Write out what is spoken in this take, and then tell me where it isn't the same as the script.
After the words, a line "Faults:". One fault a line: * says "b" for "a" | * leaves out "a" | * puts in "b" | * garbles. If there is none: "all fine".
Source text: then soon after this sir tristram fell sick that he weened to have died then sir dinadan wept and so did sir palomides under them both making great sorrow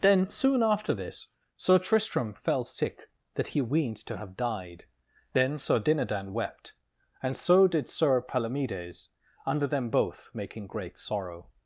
then soon after this sir tristram fell sick that he weened to have died then sir dinadan wept and so did sir palomides under them both making great sorrow
Faults:
all fine